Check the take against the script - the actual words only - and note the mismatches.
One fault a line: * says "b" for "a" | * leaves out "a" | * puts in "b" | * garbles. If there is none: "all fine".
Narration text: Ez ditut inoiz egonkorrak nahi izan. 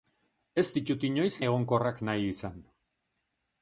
all fine